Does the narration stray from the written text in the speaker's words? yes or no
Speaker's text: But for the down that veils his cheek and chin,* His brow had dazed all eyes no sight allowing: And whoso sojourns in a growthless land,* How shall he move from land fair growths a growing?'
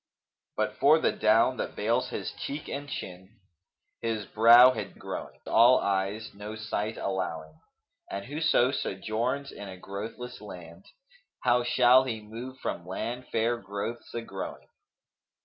yes